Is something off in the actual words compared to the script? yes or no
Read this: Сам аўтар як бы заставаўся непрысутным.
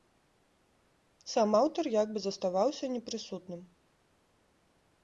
no